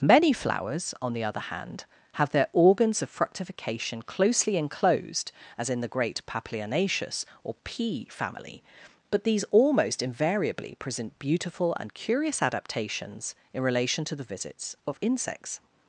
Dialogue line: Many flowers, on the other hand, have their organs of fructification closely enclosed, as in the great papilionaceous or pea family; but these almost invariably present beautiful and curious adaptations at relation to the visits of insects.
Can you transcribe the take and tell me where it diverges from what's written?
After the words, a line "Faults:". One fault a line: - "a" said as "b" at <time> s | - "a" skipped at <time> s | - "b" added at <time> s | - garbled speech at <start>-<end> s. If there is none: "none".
Many flowers, on the other hand, have their organs of fructification closely enclosed, as in the great papilionaceous or pea family; but these almost invariably present beautiful and curious adaptations in relation to the visits of insects.
Faults:
- "at" said as "in" at 13.5 s